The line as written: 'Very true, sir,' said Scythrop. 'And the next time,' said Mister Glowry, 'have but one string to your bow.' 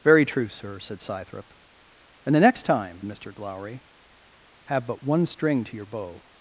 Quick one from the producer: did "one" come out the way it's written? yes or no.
yes